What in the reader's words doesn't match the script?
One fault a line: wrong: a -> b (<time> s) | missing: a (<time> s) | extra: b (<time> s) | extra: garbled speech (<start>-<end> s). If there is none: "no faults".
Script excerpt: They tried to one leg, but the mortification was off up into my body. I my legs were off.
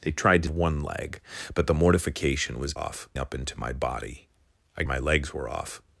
no faults